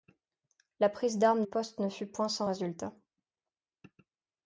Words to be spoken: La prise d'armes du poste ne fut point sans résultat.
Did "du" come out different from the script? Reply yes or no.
yes